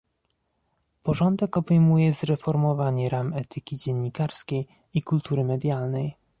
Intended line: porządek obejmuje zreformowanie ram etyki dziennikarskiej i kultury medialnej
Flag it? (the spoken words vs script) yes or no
no